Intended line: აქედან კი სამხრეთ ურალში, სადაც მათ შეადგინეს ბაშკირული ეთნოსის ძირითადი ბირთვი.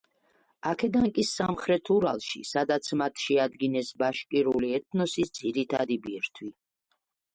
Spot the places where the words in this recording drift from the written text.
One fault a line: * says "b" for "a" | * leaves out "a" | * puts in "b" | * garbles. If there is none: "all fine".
all fine